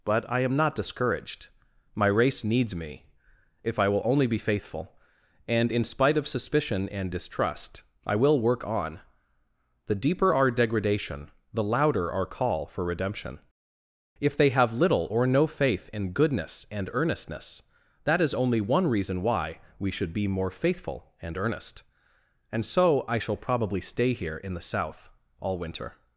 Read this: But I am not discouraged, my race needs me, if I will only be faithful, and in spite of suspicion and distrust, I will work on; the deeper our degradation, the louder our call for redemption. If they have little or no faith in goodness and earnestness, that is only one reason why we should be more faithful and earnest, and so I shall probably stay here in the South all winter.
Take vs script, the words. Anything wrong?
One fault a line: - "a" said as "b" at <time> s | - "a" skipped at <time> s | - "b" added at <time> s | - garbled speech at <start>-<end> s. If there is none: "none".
none